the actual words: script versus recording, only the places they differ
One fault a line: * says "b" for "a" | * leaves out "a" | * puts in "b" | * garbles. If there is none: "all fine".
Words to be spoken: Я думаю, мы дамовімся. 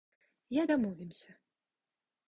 * leaves out "думаю мы"